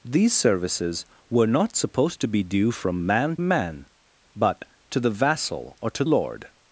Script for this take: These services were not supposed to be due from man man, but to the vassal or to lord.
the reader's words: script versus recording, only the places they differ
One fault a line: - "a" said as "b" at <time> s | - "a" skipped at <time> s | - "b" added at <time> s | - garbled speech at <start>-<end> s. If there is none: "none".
none